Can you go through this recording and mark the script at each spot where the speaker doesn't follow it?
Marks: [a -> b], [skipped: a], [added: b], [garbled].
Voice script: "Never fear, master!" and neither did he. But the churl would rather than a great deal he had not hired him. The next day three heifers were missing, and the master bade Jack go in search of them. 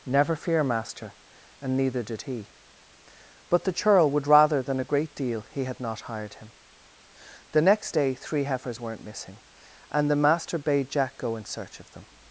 "Never fear, master!" and neither did he. But the churl would rather than a great deal he had not hired him. The next day three heifers [were -> weren't] missing, and the master bade Jack go in search of them.